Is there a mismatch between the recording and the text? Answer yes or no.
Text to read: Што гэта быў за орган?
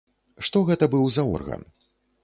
no